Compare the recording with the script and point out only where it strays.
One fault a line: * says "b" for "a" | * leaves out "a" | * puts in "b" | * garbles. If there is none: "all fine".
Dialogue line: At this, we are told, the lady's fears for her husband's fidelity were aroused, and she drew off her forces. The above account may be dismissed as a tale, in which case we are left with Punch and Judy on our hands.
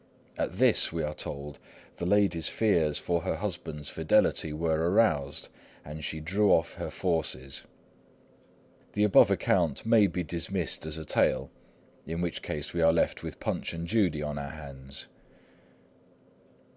all fine